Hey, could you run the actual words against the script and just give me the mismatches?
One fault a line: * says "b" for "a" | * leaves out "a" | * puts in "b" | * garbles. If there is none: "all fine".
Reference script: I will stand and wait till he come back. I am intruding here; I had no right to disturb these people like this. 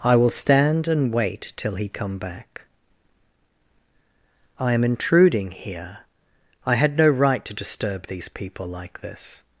all fine